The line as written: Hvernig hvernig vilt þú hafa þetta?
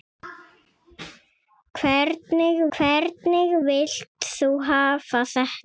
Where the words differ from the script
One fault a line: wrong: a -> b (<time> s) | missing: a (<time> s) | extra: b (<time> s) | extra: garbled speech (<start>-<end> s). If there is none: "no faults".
no faults